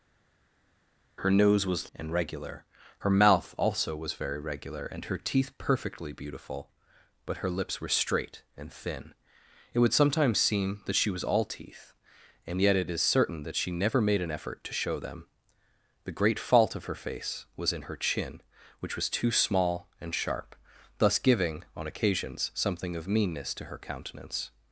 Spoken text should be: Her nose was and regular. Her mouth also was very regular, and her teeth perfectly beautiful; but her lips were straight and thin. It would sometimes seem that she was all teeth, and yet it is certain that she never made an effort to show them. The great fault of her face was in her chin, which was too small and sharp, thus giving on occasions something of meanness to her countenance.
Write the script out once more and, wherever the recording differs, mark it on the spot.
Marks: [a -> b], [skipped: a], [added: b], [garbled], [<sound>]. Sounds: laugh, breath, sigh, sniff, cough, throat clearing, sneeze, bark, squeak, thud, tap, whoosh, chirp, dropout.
Her nose was and regular. Her mouth also was very regular, and her teeth perfectly beautiful; but her lips were straight and thin. It would sometimes seem that she was all teeth, and yet it is certain that she never made an effort to show them. The great fault of her face was in her chin, which was too small and sharp, thus giving on occasions something of meanness to her countenance.